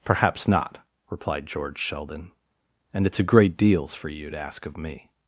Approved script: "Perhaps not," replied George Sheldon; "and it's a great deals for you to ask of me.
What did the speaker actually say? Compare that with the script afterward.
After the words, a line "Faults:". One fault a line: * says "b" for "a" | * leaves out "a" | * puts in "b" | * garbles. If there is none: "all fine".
"Perhaps not," replied George Sheldon; "and it's a great deals for you to ask of me.
Faults:
all fine